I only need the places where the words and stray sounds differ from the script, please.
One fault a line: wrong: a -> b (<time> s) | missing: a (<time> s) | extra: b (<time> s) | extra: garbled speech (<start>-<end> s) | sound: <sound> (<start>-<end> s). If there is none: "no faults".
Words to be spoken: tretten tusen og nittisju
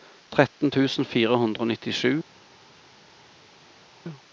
extra: fire hundre (1.1 s)